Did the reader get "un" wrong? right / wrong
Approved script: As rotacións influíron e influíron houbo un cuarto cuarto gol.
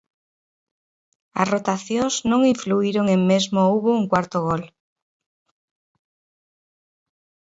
right